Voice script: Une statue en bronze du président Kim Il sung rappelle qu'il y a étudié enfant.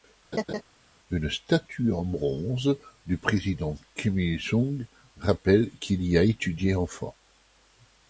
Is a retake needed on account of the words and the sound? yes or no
yes